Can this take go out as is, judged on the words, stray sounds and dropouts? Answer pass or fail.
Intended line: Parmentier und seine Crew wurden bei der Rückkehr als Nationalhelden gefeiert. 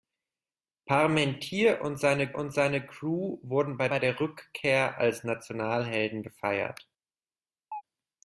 fail